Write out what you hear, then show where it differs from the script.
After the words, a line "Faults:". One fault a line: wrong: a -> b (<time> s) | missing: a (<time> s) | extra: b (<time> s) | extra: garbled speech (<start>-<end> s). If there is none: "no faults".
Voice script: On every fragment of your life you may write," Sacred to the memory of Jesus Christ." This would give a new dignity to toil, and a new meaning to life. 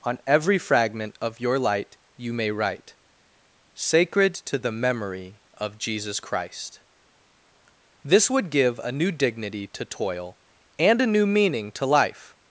On every fragment of your light you may write," Sacred to the memory of Jesus Christ." This would give a new dignity to toil, and a new meaning to life.
Faults:
wrong: life -> light (1.6 s)